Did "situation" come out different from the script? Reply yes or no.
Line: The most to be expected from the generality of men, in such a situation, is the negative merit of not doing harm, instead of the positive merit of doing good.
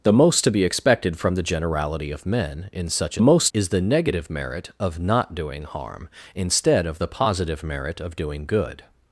yes